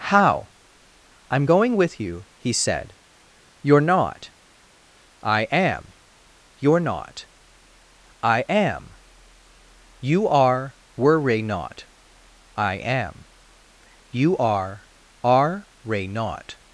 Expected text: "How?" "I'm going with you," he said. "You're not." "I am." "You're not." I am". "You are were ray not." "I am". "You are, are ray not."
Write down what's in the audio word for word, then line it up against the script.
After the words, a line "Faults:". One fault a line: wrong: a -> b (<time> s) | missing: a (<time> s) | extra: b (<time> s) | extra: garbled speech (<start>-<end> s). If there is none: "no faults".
"How?" "I'm going with you," he said. "You're not." "I am." "You're not." I am". "You are were ray not." "I am". "You are, are ray not."
Faults:
no faults